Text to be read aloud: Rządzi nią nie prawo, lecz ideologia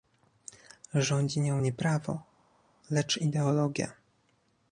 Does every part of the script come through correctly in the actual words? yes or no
yes